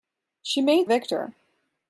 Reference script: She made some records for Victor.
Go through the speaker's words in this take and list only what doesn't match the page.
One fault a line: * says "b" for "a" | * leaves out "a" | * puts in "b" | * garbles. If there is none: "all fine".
* leaves out "some records for"